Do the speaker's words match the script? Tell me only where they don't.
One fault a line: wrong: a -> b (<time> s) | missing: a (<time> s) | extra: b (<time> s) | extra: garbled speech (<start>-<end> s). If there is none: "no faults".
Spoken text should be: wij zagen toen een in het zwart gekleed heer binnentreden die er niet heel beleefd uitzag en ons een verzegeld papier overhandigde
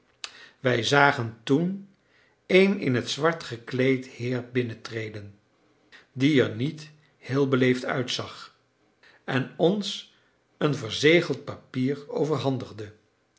no faults